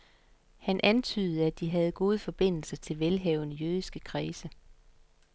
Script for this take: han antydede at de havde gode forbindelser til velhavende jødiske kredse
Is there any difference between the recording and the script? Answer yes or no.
no